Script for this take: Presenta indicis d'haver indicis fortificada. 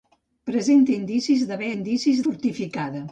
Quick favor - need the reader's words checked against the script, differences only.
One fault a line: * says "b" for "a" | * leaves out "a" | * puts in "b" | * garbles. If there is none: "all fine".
all fine